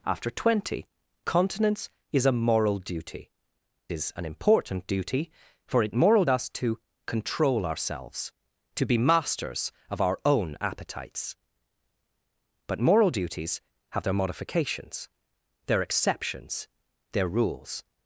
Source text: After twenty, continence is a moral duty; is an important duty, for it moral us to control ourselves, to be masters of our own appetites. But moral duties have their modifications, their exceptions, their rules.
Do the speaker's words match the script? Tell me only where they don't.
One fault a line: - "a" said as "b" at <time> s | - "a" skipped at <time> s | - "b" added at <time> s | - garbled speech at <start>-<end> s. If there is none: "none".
none